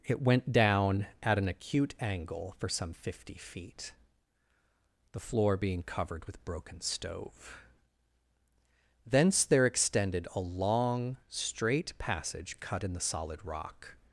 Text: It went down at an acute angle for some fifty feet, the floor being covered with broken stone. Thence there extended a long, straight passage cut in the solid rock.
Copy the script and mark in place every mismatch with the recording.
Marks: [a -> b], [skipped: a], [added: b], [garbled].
It went down at an acute angle for some fifty feet, the floor being covered with broken [stone. -> stove] Thence there extended a long, straight passage cut in the solid rock.